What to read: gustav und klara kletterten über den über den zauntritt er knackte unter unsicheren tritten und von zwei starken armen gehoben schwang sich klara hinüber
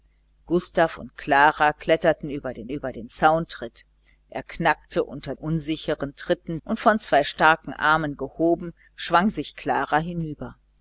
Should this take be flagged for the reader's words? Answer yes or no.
no